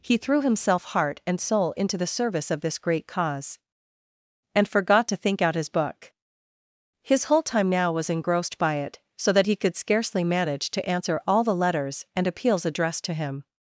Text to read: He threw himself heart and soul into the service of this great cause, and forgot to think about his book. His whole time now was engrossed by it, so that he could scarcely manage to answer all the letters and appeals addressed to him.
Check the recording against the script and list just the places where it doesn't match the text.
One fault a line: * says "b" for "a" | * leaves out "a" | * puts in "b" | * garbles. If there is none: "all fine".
* says "out" for "about"